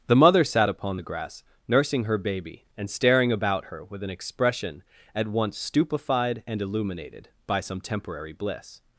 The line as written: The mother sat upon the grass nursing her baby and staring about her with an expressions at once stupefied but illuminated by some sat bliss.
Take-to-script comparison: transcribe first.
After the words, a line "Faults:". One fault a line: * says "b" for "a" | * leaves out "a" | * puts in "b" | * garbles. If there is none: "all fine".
The mother sat upon the grass nursing her baby and staring about her with an expression at once stupefied and illuminated by some temporary bliss.
Faults:
* says "expression" for "expressions"
* says "and" for "but"
* says "temporary" for "sat"